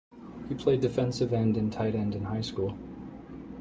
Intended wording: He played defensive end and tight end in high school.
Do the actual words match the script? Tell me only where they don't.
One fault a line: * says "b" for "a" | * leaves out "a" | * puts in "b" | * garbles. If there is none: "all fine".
all fine